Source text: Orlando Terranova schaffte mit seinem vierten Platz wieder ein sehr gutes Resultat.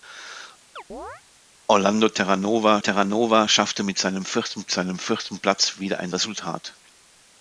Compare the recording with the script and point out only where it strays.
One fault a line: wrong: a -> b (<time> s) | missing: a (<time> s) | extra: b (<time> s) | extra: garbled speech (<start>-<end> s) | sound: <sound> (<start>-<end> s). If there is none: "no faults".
sound: chirp (0.8-1.2 s)
extra: Terranova (2.8 s)
extra: seinem vierten (4.7 s)
missing: sehr gutes (6.1 s)